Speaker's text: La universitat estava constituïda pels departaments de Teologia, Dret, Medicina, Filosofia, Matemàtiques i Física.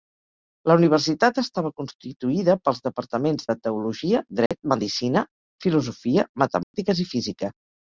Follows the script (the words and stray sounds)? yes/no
no